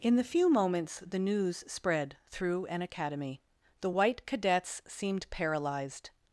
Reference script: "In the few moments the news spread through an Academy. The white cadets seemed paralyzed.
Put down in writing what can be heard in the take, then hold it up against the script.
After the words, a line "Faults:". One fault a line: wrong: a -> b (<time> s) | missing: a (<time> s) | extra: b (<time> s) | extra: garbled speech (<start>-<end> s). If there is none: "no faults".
"In the few moments the news spread through an Academy. The white cadets seemed paralyzed.
Faults:
no faults